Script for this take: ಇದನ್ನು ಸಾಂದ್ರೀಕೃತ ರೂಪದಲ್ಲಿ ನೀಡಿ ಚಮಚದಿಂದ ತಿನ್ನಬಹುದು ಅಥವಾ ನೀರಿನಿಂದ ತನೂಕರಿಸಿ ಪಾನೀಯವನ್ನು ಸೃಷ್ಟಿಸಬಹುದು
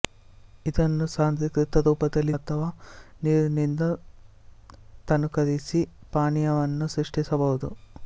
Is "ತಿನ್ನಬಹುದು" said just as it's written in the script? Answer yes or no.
no